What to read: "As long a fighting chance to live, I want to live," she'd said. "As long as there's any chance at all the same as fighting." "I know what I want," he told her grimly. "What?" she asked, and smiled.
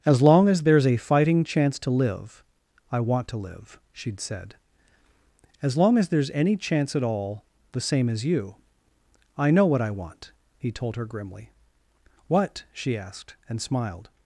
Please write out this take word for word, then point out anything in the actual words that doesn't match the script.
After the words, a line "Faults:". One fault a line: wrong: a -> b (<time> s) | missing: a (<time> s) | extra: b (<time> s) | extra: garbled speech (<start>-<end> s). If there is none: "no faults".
"As long as there's a fighting chance to live, I want to live," she'd said. "As long as there's any chance at all the same as you." "I know what I want," he told her grimly. "What?" she asked, and smiled.
Faults:
extra: as there's (0.5 s)
wrong: fighting -> you (8.2 s)